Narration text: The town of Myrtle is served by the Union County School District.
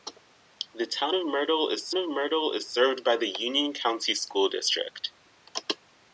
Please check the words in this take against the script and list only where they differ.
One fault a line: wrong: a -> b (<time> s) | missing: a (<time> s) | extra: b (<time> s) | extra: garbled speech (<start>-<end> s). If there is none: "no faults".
extra: of Myrtle is (1.9 s)